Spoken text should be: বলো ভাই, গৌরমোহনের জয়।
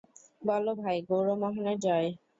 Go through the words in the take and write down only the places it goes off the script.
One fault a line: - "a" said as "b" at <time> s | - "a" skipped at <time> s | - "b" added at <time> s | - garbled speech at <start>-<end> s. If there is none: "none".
none